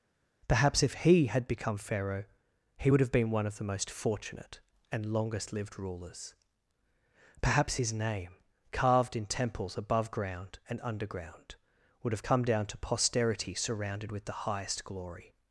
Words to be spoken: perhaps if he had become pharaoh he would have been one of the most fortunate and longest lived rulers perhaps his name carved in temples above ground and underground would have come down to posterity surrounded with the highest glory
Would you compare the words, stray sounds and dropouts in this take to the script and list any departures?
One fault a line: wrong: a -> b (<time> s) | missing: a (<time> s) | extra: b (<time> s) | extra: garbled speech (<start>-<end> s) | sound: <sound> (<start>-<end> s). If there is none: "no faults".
no faults